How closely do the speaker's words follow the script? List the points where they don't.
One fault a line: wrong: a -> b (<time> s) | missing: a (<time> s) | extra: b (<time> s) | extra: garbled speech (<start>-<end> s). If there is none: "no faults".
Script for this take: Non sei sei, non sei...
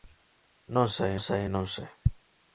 no faults